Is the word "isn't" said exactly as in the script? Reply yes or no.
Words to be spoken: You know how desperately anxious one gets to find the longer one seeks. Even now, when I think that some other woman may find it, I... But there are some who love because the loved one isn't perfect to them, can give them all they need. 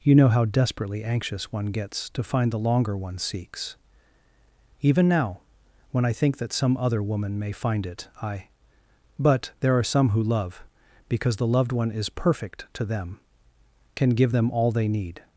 no